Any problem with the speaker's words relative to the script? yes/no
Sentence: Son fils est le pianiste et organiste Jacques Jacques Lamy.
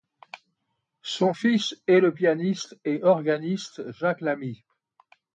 yes